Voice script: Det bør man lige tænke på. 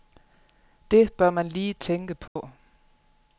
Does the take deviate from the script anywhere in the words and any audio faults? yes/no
yes